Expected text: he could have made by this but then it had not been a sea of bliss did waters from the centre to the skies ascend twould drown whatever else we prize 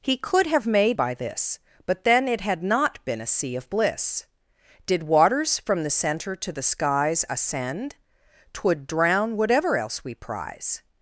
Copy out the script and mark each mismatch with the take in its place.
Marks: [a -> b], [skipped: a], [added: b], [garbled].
he could have made by this but then it had not been a sea of bliss did waters from the centre to the skies ascend twould drown whatever else we prize